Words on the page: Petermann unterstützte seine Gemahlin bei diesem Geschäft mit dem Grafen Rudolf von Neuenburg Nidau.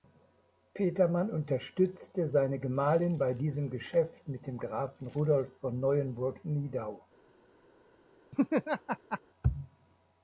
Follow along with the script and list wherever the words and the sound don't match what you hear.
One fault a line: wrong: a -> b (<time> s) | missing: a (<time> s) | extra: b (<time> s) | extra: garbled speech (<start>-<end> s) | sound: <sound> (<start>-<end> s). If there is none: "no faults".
sound: laugh (8.3-9.2 s)